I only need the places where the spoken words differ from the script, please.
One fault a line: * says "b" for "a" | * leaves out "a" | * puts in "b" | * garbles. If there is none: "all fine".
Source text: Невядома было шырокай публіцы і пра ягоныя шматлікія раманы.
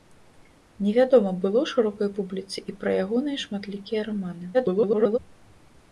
* garbles